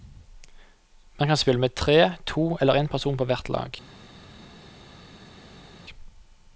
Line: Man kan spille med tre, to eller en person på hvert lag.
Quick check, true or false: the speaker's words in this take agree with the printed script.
true